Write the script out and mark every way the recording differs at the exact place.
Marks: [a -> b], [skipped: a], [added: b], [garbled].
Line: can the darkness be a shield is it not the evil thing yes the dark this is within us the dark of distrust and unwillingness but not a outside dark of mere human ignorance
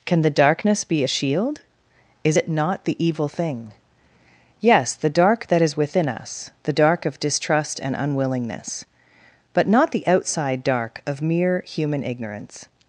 can the darkness be a shield is it not the evil thing yes the dark [this -> that] is within us the dark of distrust and unwillingness but not [a -> the] outside dark of mere human ignorance